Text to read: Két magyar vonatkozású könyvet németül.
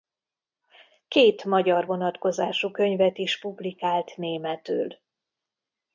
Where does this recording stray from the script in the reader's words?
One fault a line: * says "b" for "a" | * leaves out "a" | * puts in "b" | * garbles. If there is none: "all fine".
* puts in "is publikált"